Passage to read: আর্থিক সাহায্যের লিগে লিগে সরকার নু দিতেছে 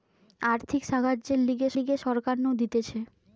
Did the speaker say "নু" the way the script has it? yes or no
yes